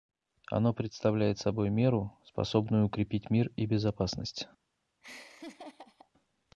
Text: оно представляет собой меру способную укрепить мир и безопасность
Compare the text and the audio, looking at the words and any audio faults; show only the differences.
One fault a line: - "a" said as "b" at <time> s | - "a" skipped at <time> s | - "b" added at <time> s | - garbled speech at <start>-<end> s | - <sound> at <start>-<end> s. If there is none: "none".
- laugh at 5.0-6.1 s